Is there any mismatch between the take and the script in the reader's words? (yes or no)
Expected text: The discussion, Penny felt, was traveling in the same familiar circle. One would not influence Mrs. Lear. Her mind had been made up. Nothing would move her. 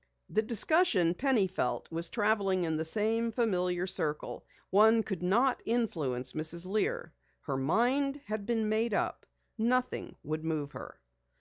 yes